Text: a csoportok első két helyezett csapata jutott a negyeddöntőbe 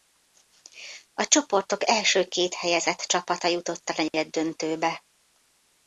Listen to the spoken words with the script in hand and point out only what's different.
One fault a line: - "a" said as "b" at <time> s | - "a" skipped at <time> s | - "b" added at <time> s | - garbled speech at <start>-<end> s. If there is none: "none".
none